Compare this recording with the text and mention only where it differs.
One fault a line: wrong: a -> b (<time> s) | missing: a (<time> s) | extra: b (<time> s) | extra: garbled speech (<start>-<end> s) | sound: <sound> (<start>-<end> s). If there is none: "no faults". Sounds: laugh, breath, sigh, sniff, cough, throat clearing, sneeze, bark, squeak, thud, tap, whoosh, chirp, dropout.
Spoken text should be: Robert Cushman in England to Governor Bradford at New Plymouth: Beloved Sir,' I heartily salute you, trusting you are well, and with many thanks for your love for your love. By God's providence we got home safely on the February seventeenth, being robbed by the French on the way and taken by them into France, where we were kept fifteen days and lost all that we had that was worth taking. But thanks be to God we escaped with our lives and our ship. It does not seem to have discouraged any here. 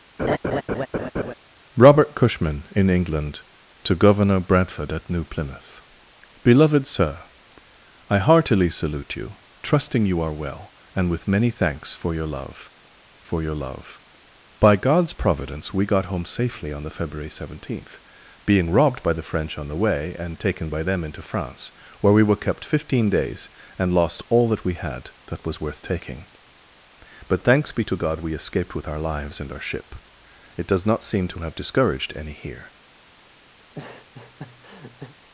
sound: laugh (0.2-1.3 s)
sound: laugh (33.6-35.1 s)